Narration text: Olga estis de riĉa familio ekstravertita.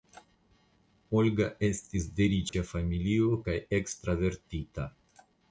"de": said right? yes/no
yes